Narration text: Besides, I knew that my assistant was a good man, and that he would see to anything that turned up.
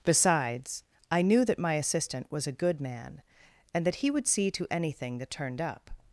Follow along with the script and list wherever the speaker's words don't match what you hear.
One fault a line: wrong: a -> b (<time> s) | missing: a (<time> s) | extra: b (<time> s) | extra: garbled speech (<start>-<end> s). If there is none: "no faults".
no faults